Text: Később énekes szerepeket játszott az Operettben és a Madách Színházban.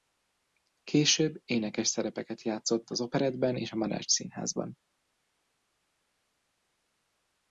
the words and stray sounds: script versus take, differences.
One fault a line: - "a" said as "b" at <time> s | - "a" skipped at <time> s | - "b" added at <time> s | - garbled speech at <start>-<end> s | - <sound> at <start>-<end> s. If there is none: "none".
none